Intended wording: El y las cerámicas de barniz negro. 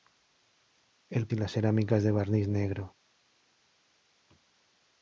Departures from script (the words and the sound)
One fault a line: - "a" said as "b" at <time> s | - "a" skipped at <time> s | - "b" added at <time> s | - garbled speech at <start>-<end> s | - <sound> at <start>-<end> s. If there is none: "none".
none